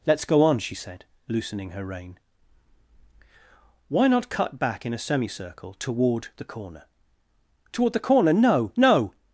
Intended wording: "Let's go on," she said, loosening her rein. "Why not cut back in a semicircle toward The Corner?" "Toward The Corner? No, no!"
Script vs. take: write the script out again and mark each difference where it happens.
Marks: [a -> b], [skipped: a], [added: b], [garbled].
"Let's go on," she said, loosening her rein. "Why not cut back in a semicircle toward The Corner?" "Toward The Corner? No, no!"